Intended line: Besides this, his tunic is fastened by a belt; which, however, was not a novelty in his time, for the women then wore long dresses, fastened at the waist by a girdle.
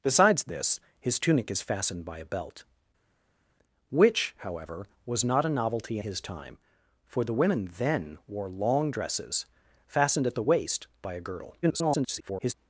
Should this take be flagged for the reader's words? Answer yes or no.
yes